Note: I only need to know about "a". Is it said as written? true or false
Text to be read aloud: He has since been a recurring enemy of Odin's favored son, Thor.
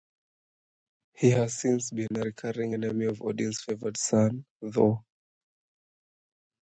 true